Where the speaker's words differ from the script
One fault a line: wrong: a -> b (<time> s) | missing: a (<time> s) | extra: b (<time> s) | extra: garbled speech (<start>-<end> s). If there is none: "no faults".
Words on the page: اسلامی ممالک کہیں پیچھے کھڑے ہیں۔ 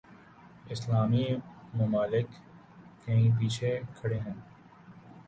no faults